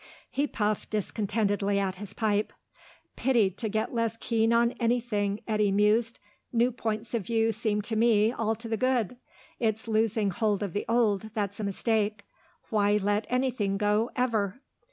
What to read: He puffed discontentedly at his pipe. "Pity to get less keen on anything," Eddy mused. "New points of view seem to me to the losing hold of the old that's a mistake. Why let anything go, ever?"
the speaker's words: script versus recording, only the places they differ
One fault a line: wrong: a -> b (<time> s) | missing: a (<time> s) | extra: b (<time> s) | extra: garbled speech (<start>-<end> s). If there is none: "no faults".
extra: all (8.3 s)
extra: good it's (8.8 s)